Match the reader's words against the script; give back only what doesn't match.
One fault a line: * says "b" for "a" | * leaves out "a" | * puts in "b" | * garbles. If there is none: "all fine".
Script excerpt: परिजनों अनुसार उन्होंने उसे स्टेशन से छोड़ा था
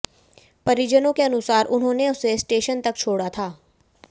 * puts in "के"
* says "तक" for "से"